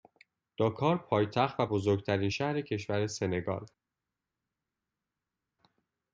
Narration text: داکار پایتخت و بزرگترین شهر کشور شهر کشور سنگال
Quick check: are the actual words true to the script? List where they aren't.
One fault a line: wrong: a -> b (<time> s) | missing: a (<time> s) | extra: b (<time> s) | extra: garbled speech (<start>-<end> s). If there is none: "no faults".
missing: شهر کشور (3.1 s)